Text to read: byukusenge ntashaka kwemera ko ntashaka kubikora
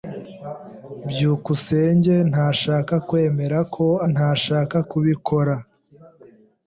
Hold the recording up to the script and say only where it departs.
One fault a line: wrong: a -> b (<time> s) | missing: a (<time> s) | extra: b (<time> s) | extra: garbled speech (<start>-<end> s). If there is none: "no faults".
no faults